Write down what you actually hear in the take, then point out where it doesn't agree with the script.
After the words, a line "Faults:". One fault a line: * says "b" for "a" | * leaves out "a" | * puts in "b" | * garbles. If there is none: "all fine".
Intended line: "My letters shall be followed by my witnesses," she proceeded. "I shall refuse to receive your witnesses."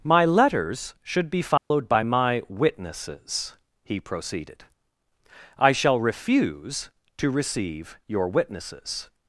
"My letters should be followed by my witnesses," he proceeded. "I shall refuse to receive your witnesses."
Faults:
* says "should" for "shall"
* says "he" for "she"